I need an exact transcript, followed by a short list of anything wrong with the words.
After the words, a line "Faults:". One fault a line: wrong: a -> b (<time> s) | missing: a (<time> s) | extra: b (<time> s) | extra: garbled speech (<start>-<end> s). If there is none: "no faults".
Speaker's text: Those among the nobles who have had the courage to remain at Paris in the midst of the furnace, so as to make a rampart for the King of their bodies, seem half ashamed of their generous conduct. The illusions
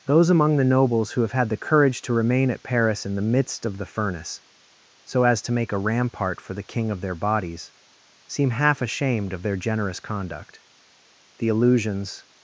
Those among the nobles who have had the courage to remain at Paris in the midst of the furnace, so as to make a rampart for the King of their bodies, seem half ashamed of their generous conduct. The illusions
Faults:
no faults